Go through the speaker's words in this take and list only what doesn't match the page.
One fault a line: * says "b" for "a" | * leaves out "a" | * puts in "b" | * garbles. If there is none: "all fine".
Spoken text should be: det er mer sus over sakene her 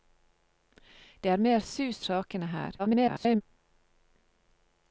* leaves out "over"
* garbles